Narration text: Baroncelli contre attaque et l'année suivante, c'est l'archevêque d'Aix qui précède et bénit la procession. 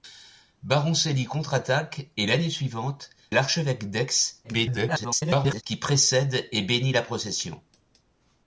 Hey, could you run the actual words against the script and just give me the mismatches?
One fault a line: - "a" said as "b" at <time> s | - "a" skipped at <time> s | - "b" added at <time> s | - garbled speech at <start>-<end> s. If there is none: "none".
- "c'est" skipped at 3.1 s
- garbled speech at 4.4-5.6 s